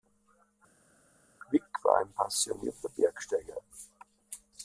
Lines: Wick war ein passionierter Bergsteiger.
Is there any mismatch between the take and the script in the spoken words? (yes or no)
no